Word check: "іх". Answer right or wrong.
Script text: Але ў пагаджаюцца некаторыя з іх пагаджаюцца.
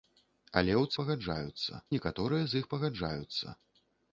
right